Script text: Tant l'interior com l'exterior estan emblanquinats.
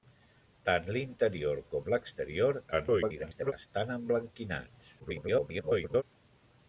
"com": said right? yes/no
yes